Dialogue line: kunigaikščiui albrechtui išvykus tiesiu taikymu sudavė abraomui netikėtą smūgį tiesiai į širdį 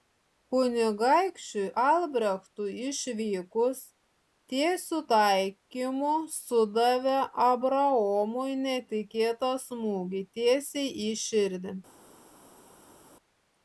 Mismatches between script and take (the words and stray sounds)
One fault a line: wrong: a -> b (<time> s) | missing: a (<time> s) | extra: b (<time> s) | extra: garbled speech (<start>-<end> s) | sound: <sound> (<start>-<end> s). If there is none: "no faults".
no faults